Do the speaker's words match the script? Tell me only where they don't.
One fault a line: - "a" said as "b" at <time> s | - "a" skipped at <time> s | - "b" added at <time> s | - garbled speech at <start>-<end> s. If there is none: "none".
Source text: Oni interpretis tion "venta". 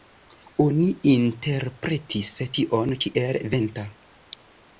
- "kiel" added at 3.0 s